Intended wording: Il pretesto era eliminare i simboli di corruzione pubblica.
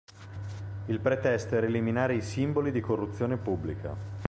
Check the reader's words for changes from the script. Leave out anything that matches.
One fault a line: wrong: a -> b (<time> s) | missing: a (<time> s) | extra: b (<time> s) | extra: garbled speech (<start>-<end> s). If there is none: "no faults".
no faults